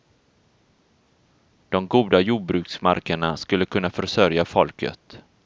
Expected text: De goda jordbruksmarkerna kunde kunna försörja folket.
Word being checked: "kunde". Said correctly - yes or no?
no